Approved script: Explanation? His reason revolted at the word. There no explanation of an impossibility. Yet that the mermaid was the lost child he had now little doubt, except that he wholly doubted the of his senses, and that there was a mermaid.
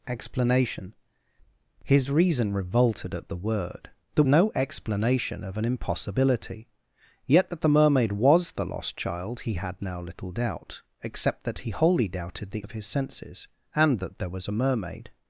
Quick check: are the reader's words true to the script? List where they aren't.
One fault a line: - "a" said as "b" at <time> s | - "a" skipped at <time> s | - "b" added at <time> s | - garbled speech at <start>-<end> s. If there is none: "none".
none